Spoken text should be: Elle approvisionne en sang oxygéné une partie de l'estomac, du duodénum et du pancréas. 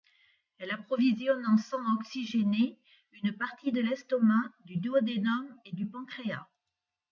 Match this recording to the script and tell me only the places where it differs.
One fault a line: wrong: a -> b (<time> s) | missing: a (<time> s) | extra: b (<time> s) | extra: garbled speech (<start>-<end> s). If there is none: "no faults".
no faults